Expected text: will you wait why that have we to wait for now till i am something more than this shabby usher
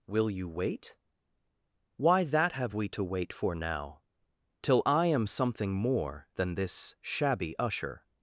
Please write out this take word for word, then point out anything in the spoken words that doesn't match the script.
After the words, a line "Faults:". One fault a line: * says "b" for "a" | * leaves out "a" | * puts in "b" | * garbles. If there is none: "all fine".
will you wait why that have we to wait for now till i am something more than this shabby usher
Faults:
all fine